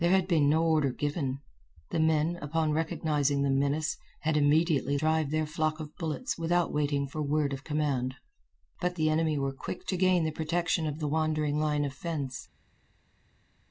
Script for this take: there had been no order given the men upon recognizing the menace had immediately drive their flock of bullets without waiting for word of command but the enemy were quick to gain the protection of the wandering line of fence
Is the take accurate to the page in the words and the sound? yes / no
yes